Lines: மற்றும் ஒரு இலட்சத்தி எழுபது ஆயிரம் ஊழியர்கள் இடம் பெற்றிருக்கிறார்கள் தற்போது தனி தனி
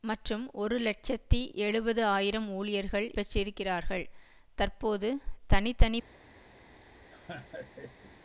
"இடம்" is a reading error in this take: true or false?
true